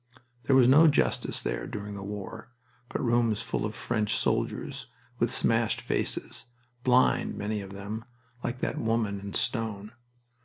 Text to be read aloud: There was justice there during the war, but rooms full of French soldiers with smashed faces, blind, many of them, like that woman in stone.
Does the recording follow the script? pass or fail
fail